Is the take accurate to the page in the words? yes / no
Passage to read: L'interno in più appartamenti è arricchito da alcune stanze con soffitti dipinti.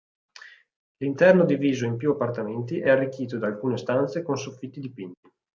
no